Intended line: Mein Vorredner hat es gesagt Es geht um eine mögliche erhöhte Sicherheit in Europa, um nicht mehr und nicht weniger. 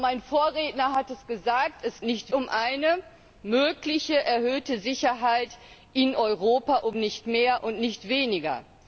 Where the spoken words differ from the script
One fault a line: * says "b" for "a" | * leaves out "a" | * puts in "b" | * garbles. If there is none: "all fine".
* says "nicht" for "geht"